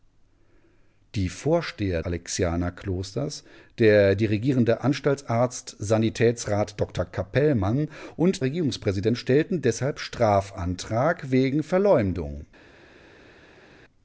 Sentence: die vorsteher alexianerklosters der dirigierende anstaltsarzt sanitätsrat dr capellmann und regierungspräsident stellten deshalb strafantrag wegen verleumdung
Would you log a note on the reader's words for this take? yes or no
no